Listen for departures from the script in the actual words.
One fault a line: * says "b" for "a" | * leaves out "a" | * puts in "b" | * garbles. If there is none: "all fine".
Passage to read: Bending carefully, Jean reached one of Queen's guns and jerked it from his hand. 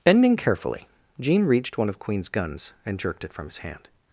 all fine